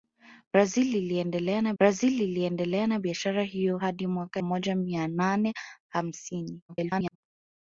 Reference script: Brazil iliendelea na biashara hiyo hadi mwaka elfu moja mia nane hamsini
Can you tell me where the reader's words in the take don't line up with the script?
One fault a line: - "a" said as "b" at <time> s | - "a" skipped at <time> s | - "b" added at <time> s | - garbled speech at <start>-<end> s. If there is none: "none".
- "brazil iliendelea na" added at 1.8 s
- "elfu" skipped at 4.4 s
- garbled speech at 6.7-7.2 s